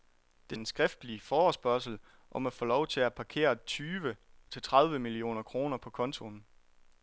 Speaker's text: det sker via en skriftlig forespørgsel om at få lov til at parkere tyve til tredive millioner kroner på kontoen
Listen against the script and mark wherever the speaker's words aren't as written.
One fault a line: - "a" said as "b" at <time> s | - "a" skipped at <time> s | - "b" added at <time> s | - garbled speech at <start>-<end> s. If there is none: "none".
- "sker via" skipped at 0.6 s